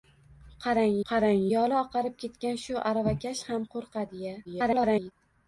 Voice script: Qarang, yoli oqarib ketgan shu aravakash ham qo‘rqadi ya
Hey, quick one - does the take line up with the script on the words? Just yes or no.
no